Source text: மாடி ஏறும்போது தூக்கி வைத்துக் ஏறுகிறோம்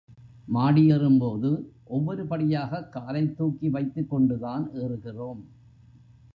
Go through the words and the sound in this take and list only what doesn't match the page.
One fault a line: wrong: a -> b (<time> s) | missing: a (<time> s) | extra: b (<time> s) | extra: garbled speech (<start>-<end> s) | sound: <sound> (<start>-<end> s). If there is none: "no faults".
extra: ஒவ்வொரு படியாகக் காலைத் (1.8 s)
extra: கொண்டுதான் (4.1 s)